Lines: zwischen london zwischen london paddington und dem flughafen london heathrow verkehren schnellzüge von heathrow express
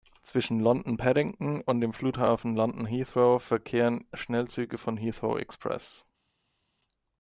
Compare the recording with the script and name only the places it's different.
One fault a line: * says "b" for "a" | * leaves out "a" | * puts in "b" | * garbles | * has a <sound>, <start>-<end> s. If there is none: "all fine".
* leaves out "zwischen london"